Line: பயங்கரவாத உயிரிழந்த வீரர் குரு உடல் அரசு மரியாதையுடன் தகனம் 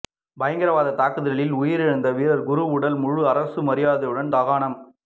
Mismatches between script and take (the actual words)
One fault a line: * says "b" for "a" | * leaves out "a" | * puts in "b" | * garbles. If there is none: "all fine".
* puts in "தாக்குதலில்"
* puts in "முழு"